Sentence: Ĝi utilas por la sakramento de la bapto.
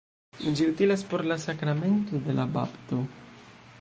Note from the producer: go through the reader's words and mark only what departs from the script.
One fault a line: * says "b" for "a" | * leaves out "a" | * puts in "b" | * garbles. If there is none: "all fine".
all fine